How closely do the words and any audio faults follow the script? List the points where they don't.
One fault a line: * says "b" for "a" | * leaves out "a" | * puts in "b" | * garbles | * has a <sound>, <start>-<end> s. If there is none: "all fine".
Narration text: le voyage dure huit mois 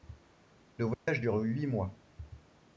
* has a dropout, 0.9-1.1 s